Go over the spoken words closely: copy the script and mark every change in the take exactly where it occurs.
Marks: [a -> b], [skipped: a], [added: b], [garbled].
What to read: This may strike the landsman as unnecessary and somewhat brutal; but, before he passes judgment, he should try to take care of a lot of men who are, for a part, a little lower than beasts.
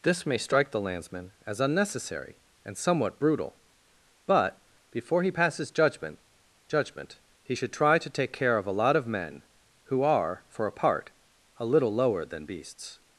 This may strike the landsman as unnecessary and somewhat brutal; but, before he passes judgment, [added: judgment] he should try to take care of a lot of men who are, for a part, a little lower than beasts.